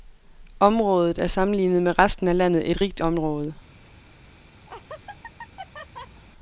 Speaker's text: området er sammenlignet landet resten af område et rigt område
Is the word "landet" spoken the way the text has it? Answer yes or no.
no